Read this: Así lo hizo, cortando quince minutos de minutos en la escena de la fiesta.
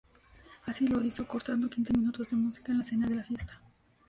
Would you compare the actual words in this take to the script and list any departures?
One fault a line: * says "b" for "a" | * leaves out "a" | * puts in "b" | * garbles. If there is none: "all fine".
* says "música" for "minutos"